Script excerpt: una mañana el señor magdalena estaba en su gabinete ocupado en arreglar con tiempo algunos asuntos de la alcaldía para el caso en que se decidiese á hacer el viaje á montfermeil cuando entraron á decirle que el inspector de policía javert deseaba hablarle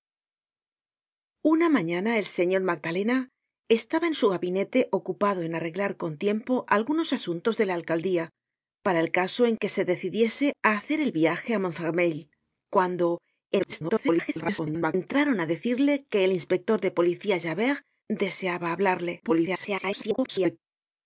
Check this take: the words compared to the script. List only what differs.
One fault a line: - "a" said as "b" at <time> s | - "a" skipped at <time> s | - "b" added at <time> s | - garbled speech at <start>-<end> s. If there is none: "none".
- garbled speech at 13.6-14.9 s
- garbled speech at 19.2-20.6 s